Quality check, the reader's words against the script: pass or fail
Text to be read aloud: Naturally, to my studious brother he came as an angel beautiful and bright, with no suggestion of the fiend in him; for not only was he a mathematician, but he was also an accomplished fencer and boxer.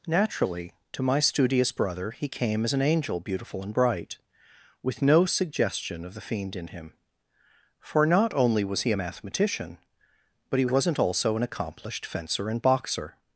fail